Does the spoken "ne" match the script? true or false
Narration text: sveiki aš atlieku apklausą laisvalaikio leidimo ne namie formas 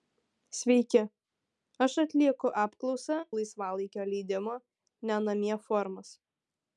true